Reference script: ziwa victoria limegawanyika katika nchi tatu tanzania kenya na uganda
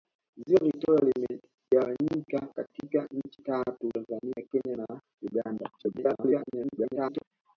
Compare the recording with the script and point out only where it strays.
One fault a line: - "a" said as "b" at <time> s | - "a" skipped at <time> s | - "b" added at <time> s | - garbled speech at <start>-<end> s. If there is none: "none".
- garbled speech at 5.8-7.2 s